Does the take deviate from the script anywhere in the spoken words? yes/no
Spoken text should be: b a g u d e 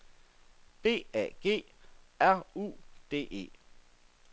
yes